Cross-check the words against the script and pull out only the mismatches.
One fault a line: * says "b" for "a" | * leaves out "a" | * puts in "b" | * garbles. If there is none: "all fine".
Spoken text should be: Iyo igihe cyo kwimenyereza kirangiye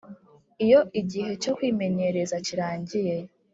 all fine